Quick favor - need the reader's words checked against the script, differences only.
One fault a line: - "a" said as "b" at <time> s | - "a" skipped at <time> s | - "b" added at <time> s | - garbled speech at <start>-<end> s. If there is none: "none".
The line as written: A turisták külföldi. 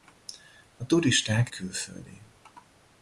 none